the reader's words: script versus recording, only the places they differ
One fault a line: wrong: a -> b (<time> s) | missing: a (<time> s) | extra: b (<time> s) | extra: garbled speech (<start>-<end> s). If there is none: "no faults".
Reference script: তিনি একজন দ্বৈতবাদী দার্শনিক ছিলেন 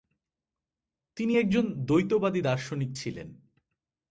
no faults